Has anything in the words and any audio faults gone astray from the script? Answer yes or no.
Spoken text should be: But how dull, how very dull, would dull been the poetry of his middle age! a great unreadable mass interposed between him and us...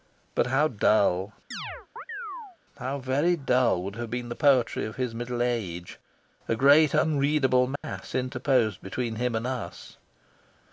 yes